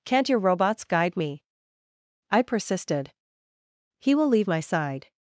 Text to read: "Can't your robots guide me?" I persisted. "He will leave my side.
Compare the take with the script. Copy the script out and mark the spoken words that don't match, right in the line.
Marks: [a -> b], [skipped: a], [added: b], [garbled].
"Can't your robots guide me?" I persisted. "He will leave my side.